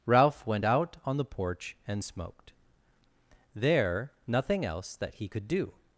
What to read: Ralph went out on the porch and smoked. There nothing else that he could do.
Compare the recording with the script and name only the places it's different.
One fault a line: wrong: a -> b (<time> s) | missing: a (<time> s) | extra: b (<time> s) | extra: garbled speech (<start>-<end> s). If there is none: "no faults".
no faults